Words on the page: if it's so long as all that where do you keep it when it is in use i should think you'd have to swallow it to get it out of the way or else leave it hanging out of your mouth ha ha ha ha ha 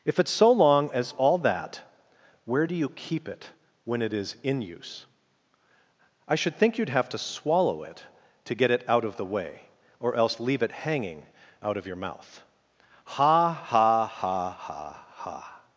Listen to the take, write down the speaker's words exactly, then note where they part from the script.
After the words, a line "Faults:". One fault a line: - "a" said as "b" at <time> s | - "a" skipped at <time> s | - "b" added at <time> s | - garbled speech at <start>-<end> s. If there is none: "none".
if it's so long as all that where do you keep it when it is in use i should think you'd have to swallow it to get it out of the way or else leave it hanging out of your mouth ha ha ha ha ha
Faults:
none